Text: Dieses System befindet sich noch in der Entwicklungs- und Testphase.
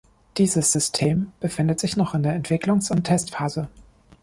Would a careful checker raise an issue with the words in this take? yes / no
no